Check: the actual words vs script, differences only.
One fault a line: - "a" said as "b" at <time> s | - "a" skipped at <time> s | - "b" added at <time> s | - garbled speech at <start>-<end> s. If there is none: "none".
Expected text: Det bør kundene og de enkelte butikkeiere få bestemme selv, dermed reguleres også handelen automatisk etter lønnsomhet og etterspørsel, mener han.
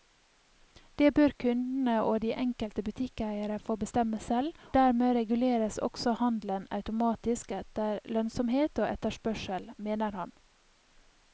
none